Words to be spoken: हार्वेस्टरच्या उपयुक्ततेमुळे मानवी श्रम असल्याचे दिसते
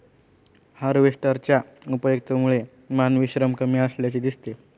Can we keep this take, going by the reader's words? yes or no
no